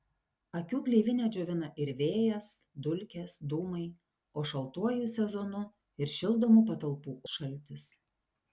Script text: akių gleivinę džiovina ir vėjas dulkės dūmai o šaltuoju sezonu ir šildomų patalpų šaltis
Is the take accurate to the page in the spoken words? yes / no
yes